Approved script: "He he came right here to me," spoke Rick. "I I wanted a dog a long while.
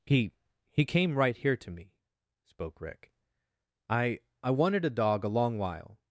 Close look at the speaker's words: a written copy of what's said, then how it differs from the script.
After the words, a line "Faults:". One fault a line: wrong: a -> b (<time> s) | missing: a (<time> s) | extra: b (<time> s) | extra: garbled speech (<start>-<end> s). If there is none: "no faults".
"He he came right here to me," spoke Rick. "I I wanted a dog a long while.
Faults:
no faults